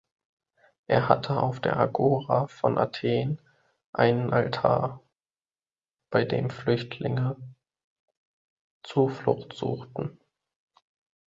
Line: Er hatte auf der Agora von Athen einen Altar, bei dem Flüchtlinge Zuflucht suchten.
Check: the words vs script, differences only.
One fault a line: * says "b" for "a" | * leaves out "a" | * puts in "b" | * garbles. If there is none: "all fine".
all fine